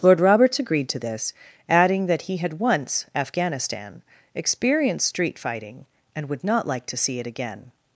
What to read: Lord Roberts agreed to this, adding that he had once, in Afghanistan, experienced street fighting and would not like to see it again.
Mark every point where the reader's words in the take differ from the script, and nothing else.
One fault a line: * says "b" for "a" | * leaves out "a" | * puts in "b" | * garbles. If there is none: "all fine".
* leaves out "in"